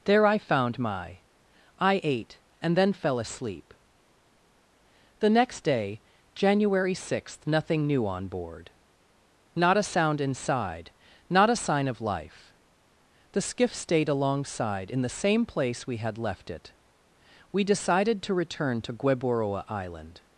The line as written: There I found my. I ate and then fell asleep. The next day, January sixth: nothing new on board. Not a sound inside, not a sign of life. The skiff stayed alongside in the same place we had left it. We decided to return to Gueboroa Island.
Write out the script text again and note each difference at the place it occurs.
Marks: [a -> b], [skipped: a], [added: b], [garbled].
There I found my. I ate and then fell asleep. The next day, January sixth: nothing new on board. Not a sound inside, not a sign of life. The skiff stayed alongside in the same place we had left it. We decided to return to Gueboroa Island.